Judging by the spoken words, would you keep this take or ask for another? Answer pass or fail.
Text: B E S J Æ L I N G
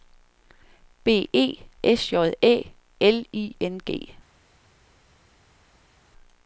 pass